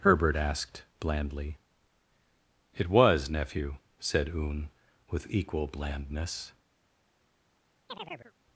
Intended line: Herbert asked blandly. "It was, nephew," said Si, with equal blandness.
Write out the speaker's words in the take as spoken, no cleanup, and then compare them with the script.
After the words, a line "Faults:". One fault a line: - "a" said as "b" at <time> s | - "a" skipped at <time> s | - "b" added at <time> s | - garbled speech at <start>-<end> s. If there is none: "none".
Herbert asked blandly. "It was, nephew," said Oon, with equal blandness.
Faults:
- "Si" said as "Oon" at 4.3 s